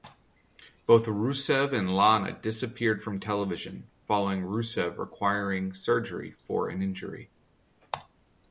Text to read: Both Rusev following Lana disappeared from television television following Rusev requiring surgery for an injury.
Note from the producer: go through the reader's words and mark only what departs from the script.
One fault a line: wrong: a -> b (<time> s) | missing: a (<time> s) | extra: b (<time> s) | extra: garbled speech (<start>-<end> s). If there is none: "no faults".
wrong: following -> and (1.8 s)
missing: television (3.9 s)